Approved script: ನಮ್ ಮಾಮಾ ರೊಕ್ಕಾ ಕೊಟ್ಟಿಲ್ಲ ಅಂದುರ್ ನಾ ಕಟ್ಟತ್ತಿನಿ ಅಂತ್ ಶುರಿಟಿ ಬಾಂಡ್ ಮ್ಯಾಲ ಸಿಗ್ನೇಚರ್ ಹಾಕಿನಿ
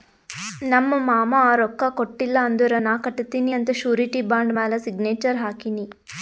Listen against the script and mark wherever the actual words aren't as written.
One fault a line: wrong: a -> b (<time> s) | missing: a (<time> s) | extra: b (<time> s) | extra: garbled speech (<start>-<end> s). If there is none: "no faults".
no faults